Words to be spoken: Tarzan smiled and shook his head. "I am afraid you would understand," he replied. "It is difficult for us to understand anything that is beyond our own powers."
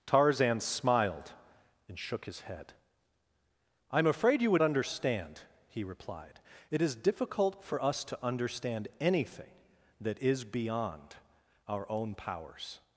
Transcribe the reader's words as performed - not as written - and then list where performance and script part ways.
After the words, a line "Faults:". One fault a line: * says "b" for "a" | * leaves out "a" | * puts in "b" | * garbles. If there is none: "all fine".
Tarzan smiled and shook his head. "I am afraid you would understand," he replied. "It is difficult for us to understand anything that is beyond our own powers."
Faults:
all fine